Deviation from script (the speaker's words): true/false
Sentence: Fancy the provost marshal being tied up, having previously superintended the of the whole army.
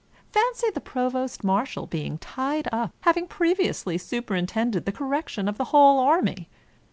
true